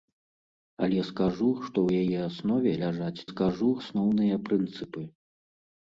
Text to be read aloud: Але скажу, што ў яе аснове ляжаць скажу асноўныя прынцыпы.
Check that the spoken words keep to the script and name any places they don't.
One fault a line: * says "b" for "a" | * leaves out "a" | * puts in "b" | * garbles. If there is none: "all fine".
all fine